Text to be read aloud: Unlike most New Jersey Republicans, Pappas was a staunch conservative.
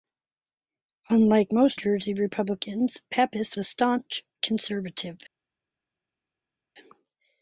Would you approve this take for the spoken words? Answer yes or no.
no